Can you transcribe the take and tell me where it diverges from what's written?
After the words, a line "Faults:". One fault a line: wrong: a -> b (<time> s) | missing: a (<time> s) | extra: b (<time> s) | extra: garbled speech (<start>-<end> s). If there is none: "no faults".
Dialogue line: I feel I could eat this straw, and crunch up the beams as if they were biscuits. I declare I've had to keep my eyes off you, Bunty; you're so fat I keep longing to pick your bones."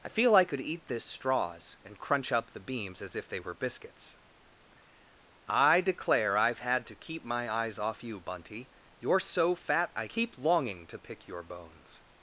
I feel I could eat this straws, and crunch up the beams as if they were biscuits. I declare I've had to keep my eyes off you, Bunty; you're so fat I keep longing to pick your bones."
Faults:
wrong: straw -> straws (1.1 s)